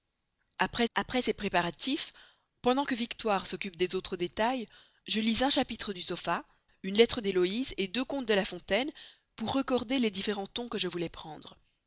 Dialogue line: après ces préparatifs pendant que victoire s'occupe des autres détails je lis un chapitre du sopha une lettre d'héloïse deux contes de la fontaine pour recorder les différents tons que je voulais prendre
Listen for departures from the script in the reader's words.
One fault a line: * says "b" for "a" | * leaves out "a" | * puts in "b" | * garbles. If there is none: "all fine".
* puts in "après"